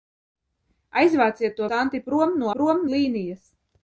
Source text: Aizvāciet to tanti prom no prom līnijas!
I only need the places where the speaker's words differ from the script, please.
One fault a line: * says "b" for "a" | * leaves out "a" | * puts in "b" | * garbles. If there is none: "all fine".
all fine